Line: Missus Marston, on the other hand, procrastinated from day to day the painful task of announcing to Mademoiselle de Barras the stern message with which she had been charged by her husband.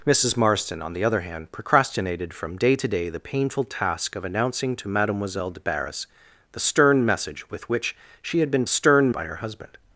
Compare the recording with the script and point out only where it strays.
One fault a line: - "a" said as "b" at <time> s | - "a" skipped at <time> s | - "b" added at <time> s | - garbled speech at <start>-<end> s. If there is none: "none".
- "charged" said as "stern" at 8.7 s